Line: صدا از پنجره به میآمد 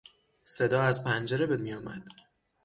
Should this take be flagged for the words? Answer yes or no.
no